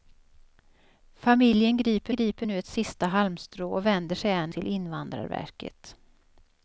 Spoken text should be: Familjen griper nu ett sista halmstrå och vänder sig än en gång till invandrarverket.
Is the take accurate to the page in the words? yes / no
no